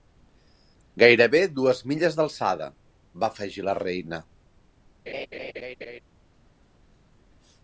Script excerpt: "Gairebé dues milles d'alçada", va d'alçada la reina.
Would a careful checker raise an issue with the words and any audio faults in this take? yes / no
yes